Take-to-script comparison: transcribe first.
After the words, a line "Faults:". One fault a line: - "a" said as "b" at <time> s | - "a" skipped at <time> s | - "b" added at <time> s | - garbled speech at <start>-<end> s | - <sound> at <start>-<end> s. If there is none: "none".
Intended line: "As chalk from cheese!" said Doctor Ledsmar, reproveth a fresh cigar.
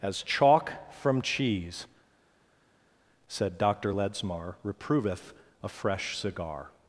"As chalk from cheese!" said Doctor Ledsmar, reproveth a fresh cigar.
Faults:
none